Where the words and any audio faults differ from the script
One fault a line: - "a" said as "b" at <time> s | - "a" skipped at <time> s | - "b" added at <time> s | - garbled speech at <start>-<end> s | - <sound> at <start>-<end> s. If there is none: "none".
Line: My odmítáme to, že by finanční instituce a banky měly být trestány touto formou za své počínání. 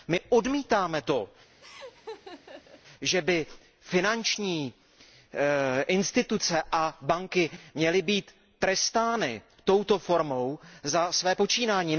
- laugh at 1.6-2.8 s